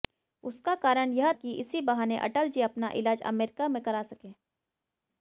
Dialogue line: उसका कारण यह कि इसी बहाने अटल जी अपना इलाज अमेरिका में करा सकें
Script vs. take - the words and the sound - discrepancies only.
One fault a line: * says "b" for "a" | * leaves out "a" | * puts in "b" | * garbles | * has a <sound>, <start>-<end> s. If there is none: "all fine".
all fine